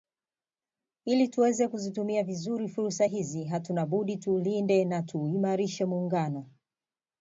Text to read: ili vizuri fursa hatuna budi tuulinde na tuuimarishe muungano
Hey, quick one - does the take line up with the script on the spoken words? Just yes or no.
no